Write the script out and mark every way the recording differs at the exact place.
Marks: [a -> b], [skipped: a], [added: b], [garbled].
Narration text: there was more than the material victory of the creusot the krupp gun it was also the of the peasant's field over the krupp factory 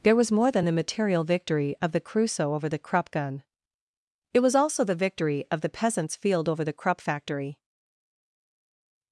there was more than the material victory of the creusot [added: over] the krupp gun it was also the [added: victory] of the peasant's field over the krupp factory